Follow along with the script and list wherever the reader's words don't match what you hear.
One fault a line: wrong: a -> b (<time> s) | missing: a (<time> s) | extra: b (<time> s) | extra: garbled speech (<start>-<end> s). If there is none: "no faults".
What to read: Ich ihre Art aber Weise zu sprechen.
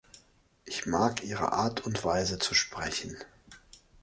extra: mag (0.9 s)
wrong: aber -> und (1.9 s)